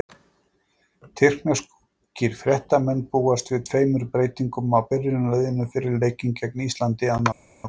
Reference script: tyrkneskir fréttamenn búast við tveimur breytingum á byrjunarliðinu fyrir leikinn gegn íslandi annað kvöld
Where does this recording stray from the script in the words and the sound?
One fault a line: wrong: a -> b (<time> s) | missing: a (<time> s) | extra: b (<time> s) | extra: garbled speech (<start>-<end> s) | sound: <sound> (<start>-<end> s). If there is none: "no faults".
no faults